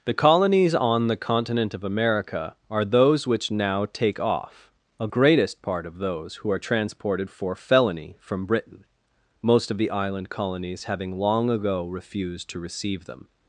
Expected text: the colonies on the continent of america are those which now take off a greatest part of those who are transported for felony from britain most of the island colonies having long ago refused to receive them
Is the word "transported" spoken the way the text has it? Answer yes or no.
yes